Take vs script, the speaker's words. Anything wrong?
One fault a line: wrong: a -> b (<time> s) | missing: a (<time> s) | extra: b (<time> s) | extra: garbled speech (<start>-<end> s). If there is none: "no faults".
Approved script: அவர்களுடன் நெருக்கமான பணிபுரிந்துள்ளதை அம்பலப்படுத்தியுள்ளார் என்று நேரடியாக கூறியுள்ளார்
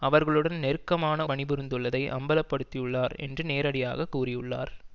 no faults